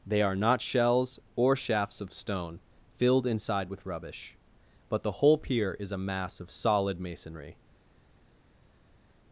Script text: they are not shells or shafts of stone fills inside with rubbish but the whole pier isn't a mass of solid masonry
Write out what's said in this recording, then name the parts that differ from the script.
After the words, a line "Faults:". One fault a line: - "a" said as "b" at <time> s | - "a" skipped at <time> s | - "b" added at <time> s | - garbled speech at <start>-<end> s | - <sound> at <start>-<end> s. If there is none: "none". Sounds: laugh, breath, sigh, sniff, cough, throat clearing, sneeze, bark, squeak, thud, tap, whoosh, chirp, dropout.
they are not shells or shafts of stone filled inside with rubbish but the whole pier is a mass of solid masonry
Faults:
- "fills" said as "filled" at 3.0 s
- "isn't" said as "is" at 5.8 s